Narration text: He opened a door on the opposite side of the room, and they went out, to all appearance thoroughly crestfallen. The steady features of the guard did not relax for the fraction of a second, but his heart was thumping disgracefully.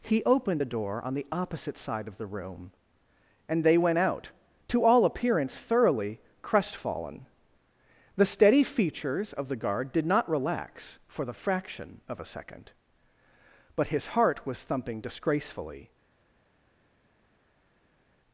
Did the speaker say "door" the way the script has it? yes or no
yes